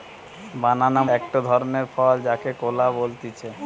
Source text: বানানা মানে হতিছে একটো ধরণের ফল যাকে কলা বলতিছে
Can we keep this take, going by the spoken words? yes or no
no